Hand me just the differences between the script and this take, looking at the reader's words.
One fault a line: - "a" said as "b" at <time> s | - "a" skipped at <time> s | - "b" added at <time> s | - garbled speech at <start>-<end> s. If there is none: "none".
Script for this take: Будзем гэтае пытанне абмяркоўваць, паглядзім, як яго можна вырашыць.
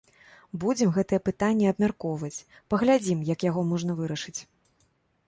none